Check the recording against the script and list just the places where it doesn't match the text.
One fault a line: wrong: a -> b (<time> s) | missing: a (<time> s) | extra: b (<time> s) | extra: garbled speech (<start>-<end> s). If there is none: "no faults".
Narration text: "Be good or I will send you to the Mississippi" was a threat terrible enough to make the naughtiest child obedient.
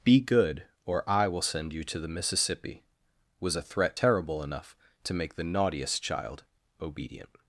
no faults